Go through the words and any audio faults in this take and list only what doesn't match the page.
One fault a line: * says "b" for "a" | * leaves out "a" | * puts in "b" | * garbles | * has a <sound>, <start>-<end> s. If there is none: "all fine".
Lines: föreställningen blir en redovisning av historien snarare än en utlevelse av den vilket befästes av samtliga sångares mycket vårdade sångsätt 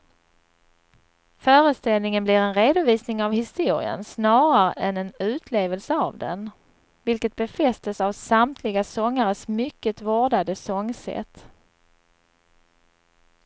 all fine